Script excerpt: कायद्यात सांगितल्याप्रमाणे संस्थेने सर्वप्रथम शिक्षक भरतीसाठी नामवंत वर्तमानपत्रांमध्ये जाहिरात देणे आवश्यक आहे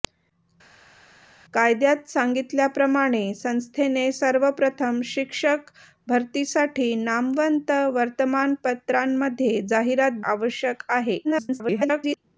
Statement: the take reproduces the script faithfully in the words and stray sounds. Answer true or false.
false